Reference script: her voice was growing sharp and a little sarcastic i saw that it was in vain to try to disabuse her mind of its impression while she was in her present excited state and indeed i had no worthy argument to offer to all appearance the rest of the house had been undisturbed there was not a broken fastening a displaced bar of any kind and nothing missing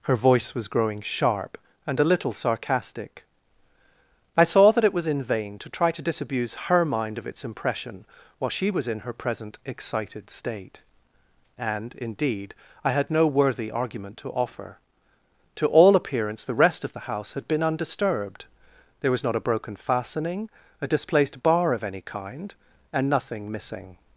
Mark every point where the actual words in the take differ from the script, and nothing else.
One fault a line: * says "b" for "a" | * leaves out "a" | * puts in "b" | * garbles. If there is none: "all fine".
all fine